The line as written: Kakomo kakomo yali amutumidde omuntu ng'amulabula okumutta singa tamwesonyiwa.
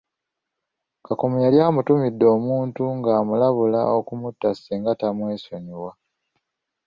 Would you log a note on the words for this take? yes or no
yes